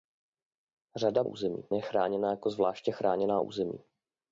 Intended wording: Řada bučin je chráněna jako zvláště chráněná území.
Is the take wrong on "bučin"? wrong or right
wrong